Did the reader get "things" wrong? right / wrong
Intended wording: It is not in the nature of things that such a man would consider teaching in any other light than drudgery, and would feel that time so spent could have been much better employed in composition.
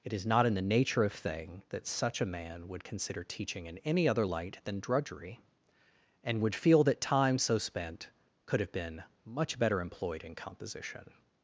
wrong